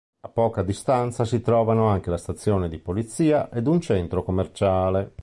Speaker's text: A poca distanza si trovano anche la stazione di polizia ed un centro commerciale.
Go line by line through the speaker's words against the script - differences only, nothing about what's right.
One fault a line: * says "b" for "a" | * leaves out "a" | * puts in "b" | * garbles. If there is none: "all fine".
all fine